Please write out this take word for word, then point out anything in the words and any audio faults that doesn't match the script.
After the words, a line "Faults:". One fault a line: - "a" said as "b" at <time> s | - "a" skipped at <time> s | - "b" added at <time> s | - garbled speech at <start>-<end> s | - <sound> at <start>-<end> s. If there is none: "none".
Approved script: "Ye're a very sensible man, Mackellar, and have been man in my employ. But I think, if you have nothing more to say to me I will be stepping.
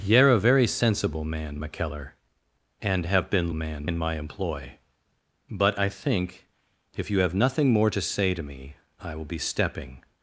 "Ye're a very sensible man, Mackellar, and have been man in my employ. But I think, if you have nothing more to say to me I will be stepping.
Faults:
none